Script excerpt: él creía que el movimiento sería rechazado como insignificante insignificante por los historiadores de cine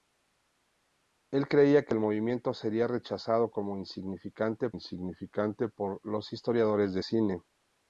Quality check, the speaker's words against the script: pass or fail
pass